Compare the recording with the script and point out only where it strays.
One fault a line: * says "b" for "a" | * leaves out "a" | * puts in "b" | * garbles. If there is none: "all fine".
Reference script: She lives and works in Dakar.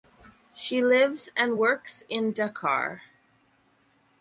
all fine